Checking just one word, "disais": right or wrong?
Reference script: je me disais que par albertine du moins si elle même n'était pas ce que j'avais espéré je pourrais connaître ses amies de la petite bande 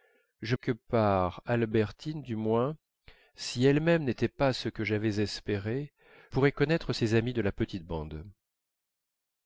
wrong